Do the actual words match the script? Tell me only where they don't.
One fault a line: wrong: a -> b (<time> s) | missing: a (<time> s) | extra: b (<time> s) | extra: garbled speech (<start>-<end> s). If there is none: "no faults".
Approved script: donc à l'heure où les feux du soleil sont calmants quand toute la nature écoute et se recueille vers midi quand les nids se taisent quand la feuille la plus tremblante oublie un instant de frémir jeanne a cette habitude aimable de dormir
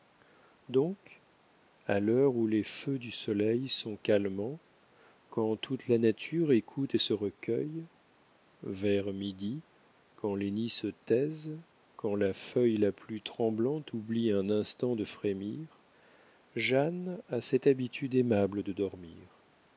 no faults